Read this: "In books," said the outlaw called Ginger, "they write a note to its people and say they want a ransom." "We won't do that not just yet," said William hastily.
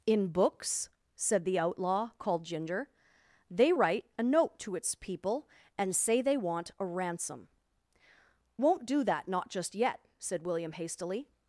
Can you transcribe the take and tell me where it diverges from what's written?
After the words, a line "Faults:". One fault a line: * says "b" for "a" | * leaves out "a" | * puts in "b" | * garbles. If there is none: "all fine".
"In books," said the outlaw called Ginger, "they write a note to its people and say they want a ransom." "Won't do that not just yet," said William hastily.
Faults:
* leaves out "We"